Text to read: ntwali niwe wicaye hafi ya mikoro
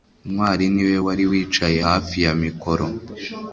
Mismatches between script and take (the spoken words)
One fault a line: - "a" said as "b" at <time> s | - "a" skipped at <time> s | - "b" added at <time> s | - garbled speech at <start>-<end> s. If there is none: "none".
- "wari" added at 1.1 s